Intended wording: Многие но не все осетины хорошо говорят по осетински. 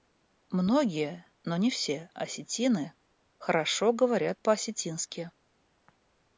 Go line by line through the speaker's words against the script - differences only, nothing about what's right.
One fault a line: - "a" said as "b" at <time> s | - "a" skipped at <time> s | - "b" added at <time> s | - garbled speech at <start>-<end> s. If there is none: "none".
none